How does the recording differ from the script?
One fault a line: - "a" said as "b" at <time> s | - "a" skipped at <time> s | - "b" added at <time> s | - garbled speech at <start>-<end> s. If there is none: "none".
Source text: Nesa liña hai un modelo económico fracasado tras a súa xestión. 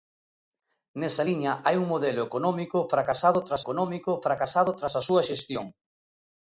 - "económico fracasado tras" added at 3.6 s